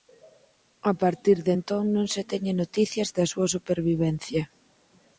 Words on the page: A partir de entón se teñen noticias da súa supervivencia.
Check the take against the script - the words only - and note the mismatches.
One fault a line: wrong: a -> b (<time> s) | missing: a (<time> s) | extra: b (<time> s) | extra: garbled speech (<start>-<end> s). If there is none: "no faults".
extra: non (1.9 s)